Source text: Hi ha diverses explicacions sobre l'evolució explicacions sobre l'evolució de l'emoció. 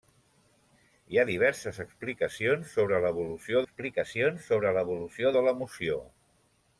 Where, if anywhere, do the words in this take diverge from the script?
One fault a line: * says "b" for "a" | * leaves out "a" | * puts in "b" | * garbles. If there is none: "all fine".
all fine